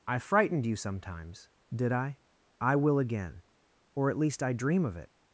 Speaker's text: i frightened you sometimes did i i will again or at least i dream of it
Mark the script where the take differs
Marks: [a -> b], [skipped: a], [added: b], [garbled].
i frightened you sometimes did i i will again or at least i dream of it